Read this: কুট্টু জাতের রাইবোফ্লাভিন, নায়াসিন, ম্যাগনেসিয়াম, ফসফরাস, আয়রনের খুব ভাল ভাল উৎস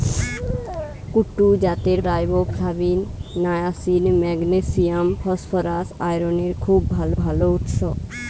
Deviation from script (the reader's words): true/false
false